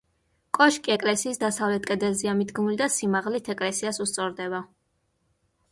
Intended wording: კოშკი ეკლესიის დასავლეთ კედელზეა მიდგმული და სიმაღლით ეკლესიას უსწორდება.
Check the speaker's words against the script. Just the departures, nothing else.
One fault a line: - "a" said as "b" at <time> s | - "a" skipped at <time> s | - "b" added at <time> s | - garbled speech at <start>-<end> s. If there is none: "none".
none